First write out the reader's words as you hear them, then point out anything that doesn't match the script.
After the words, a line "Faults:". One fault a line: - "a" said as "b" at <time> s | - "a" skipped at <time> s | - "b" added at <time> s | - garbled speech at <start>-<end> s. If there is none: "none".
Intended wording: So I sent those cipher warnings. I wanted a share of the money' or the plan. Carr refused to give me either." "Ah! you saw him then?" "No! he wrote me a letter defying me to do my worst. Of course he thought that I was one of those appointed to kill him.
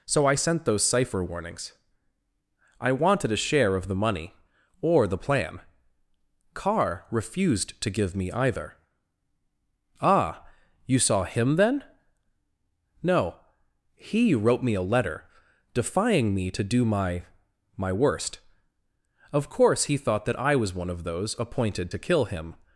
So I sent those cipher warnings. I wanted a share of the money' or the plan. Carr refused to give me either." "Ah! you saw him then?" "No! he wrote me a letter defying me to do my my worst. Of course he thought that I was one of those appointed to kill him.
Faults:
- "my" added at 17.8 s